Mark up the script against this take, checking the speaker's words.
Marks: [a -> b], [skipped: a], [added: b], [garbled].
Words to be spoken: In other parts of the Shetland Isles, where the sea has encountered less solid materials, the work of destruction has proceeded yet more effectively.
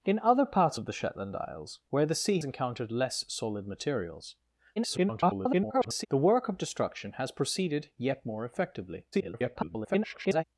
In other parts of the Shetland Isles, where the sea [skipped: has] encountered less solid materials, [garbled] the work of destruction has proceeded yet more effectively. [garbled]